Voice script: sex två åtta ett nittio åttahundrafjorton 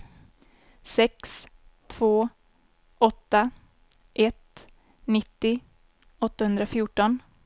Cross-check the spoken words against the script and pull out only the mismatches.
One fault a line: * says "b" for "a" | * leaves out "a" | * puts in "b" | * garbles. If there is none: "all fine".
all fine